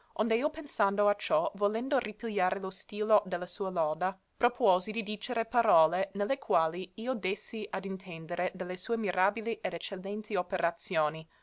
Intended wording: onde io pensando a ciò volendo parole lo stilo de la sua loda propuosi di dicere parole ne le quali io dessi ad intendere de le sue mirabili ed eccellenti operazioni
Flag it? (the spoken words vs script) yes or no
yes